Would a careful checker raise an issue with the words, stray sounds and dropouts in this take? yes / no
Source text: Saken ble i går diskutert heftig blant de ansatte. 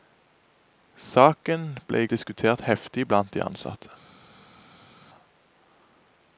yes